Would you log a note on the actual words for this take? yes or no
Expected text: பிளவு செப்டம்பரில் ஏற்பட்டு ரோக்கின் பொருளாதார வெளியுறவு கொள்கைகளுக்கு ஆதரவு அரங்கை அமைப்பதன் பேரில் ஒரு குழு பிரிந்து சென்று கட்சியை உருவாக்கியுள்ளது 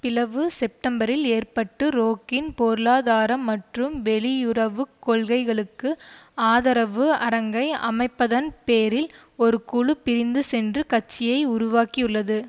yes